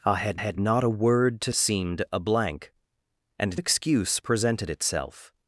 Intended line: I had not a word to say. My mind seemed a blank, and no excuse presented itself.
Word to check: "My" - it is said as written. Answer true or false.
false